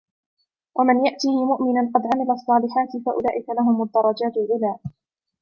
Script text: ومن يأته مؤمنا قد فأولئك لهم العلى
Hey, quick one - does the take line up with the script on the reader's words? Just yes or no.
no